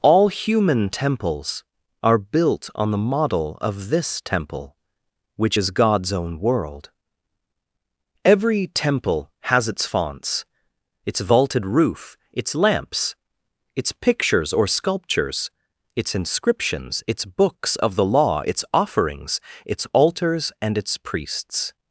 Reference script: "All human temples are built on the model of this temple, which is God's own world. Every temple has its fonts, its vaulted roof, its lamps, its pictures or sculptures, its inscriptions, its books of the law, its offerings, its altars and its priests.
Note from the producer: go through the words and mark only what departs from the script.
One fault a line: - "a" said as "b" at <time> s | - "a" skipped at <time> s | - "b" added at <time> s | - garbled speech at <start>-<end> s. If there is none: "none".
none